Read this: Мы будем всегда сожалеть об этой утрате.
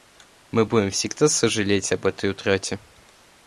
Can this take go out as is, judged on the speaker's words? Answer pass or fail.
pass